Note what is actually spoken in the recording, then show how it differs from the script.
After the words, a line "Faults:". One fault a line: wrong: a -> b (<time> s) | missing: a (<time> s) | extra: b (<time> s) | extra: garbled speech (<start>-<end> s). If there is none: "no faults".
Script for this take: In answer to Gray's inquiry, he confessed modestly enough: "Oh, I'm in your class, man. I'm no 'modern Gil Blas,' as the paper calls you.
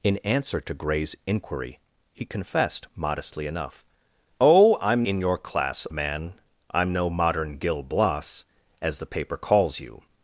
In answer to Gray's inquiry, he confessed modestly enough: "Oh, I'm in your class, man. I'm no 'modern Gil Blas,' as the paper calls you.
Faults:
no faults